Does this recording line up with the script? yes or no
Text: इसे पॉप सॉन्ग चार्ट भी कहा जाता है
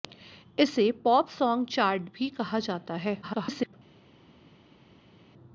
no